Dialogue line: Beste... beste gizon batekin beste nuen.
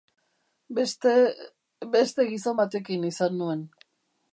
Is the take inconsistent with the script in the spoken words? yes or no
yes